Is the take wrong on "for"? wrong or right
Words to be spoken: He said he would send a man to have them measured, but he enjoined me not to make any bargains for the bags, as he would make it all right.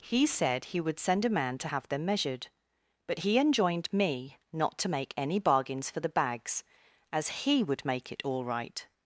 right